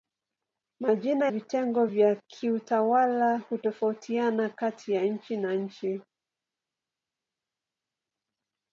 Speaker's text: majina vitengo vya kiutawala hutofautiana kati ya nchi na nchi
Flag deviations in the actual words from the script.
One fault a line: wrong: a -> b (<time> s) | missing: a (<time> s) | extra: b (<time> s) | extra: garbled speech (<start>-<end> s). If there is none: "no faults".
no faults